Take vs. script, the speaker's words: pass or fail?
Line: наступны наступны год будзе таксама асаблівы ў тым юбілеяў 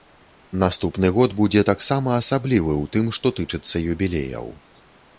fail